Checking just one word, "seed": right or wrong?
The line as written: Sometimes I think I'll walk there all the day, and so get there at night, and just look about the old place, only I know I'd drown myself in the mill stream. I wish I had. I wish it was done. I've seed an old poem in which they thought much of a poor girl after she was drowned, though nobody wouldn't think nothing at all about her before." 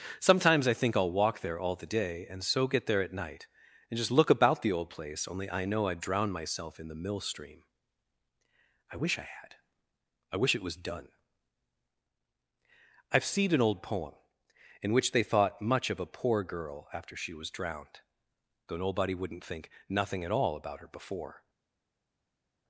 wrong